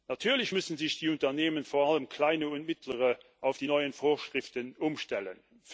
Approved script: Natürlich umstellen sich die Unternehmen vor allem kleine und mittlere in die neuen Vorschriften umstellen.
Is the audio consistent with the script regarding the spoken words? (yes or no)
no